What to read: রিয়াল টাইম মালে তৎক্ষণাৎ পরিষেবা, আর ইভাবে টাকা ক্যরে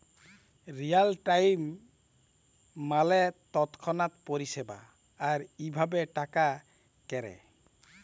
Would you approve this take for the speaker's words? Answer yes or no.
yes